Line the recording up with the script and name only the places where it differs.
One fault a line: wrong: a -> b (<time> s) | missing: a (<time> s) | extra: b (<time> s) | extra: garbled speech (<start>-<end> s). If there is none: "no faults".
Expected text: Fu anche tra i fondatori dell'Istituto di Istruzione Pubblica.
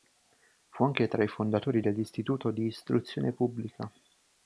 no faults